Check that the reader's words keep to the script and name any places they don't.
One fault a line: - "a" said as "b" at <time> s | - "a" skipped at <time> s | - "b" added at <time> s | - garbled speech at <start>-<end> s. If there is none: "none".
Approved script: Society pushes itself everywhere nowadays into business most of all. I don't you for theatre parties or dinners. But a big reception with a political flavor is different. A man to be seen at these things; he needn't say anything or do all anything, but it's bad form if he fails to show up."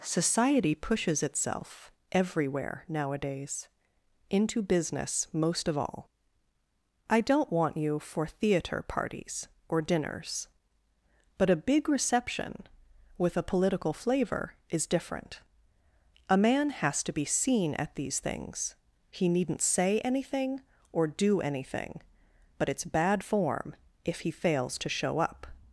- "want" added at 7.5 s
- "has" added at 16.7 s
- "all" skipped at 21.4 s